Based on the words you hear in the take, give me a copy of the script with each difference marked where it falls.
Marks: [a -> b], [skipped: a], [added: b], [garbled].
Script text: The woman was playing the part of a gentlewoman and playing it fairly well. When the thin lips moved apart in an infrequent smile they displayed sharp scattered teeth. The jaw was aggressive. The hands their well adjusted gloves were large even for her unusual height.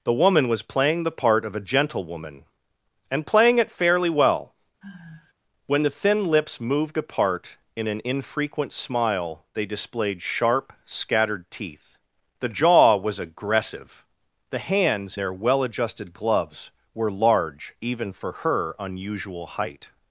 The woman was playing the part of a gentlewoman and playing it fairly well. When the thin lips moved apart in an infrequent smile they displayed sharp scattered teeth. The jaw was aggressive. The hands their well adjusted gloves were large even for her unusual height.